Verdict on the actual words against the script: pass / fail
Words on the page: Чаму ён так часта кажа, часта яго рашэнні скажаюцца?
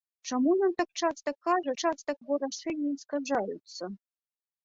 pass